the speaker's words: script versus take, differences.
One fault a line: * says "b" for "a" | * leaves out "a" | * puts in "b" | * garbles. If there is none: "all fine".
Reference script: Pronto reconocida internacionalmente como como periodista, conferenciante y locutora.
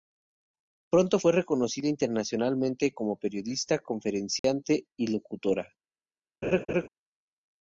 * puts in "fue"
* leaves out "como"